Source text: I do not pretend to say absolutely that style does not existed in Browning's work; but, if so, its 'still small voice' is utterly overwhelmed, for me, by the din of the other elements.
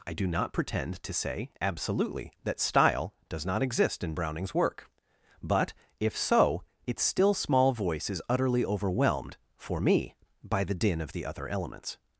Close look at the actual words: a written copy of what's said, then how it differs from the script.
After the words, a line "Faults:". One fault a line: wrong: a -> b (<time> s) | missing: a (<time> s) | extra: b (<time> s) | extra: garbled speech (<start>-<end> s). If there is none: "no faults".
I do not pretend to say absolutely that style does not exist in Browning's work; but, if so, its 'still small voice' is utterly overwhelmed, for me, by the din of the other elements.
Faults:
wrong: existed -> exist (3.6 s)